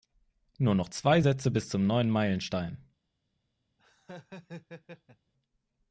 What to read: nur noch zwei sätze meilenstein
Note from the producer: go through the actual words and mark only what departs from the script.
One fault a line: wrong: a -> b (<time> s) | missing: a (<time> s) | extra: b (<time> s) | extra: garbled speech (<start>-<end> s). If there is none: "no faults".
extra: bis zum neuen (1.5 s)